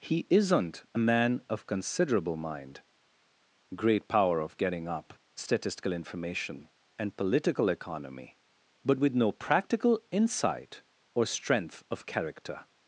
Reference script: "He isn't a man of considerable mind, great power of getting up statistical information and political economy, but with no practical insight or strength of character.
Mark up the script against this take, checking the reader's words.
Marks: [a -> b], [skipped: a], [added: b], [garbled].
"He isn't a man of considerable mind, great power of getting up statistical information and political economy, but with no practical insight or strength of character.